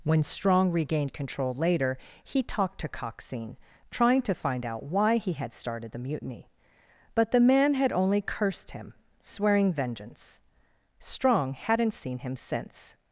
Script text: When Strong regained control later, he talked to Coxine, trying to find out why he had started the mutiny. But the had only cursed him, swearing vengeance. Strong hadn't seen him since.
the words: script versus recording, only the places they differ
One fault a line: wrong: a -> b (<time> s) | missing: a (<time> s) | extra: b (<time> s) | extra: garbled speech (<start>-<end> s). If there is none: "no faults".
extra: man (7.4 s)